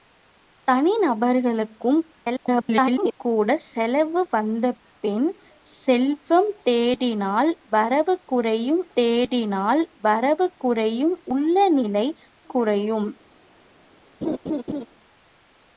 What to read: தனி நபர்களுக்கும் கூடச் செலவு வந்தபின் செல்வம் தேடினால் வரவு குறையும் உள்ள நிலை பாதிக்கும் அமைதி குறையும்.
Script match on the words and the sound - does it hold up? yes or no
no